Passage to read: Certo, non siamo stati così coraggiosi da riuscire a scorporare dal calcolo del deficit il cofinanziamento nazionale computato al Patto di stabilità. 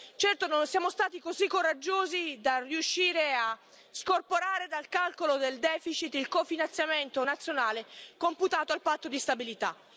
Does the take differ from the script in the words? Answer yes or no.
no